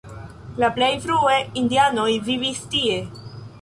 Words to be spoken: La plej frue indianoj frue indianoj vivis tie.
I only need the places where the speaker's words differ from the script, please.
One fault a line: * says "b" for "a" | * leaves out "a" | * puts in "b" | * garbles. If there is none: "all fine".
* leaves out "frue indianoj"